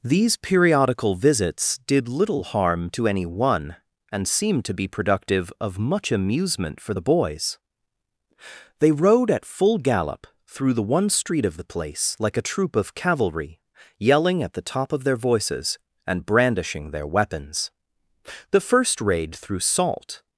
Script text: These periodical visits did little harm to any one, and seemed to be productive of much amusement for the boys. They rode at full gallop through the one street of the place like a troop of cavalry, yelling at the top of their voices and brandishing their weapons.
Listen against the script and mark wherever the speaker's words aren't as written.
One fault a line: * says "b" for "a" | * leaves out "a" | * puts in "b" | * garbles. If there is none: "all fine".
* puts in "The first raid through Salt"